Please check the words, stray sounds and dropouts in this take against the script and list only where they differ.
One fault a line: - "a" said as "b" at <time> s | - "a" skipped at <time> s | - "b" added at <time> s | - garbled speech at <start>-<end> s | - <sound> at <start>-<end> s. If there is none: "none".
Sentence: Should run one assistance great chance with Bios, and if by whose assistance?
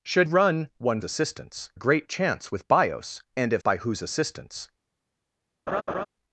- laugh at 5.7-6.1 s